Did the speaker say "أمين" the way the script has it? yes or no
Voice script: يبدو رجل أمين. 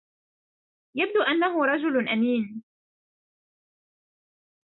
yes